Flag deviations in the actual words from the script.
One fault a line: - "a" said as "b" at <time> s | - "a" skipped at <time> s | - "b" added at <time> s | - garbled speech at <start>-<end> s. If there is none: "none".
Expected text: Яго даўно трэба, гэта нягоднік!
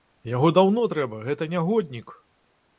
none